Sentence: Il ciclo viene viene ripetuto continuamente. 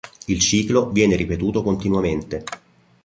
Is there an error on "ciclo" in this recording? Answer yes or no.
no